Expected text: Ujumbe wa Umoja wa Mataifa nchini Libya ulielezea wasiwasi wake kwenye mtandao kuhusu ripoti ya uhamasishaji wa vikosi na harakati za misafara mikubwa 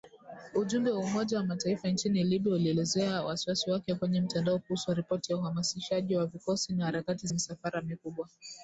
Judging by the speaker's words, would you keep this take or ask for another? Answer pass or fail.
fail